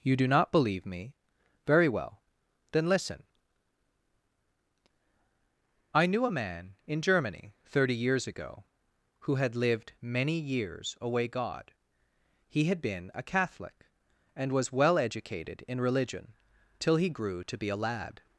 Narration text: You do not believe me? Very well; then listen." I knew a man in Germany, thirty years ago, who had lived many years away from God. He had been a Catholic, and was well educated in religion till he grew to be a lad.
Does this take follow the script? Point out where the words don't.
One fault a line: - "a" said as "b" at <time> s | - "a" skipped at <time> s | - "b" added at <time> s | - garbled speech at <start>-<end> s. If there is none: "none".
- "from" skipped at 11.3 s